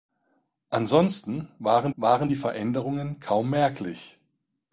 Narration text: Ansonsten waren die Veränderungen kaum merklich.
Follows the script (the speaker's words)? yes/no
no